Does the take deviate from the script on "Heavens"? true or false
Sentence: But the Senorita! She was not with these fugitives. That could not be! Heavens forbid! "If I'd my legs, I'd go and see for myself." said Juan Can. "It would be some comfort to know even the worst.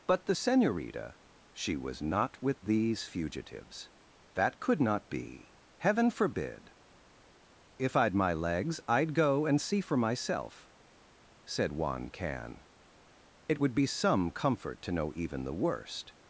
true